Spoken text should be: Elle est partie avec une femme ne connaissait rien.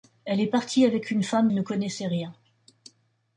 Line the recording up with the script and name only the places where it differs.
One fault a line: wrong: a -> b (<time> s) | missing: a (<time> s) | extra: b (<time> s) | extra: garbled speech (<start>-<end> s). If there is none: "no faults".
no faults